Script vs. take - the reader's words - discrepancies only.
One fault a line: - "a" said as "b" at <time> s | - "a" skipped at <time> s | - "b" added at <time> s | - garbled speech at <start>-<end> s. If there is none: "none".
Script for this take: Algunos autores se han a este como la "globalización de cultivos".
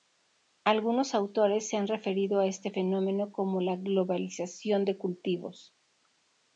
- "referido" added at 1.9 s
- "fenómeno" added at 2.7 s